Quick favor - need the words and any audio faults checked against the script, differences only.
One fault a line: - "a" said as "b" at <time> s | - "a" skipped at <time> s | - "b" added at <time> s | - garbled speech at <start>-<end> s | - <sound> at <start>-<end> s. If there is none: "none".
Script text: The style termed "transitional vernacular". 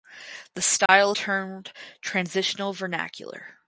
- dropout at 0.9-0.9 s